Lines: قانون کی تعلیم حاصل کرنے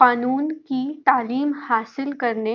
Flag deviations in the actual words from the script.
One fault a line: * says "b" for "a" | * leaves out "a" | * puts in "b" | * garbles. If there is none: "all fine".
all fine